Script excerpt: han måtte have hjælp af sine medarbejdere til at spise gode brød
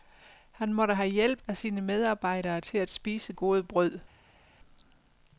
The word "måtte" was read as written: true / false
true